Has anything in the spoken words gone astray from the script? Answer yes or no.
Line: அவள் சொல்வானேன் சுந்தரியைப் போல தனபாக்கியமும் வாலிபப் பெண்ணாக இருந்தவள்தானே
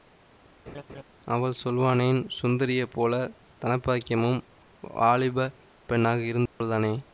no